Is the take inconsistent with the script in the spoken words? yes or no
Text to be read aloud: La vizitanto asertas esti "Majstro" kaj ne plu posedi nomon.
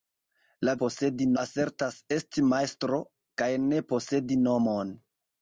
yes